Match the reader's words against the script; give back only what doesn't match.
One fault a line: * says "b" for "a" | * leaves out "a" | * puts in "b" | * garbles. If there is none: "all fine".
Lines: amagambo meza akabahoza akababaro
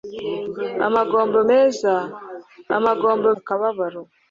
* says "amagambo" for "akabahoza"